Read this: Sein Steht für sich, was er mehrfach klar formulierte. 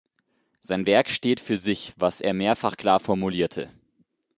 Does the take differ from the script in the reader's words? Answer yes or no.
yes